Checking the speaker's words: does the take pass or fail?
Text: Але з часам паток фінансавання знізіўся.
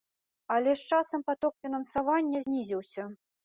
pass